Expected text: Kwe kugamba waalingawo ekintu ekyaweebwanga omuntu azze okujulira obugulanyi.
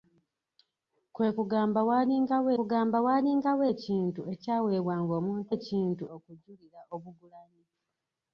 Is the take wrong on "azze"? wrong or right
wrong